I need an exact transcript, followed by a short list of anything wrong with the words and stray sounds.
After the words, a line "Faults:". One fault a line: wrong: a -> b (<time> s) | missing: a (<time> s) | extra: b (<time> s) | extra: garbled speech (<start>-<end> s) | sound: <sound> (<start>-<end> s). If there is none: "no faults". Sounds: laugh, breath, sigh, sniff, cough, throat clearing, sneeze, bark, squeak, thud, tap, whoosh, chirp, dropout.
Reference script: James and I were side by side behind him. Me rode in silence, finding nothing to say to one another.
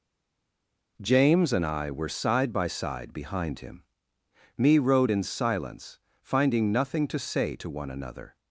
James and I were side by side behind him. Me rode in silence, finding nothing to say to one another.
Faults:
no faults